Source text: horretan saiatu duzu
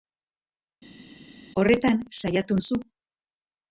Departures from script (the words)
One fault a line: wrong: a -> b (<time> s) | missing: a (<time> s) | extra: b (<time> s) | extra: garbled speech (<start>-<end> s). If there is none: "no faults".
no faults